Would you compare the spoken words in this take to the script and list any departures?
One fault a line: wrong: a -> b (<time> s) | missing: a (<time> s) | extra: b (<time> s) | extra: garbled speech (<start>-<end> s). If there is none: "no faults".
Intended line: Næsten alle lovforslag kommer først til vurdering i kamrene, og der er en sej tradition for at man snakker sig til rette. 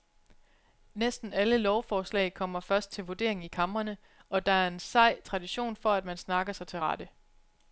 no faults